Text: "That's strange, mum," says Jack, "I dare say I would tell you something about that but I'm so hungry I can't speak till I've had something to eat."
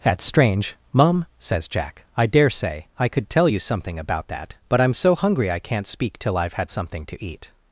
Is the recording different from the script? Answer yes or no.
yes